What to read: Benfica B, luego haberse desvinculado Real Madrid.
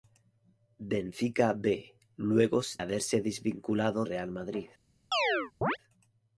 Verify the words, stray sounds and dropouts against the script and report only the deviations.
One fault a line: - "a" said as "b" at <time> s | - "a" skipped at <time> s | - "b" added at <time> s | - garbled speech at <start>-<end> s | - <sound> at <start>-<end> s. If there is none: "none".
- chirp at 5.1-5.8 s